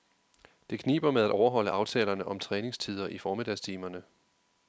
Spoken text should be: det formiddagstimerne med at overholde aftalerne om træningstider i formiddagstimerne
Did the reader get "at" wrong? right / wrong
right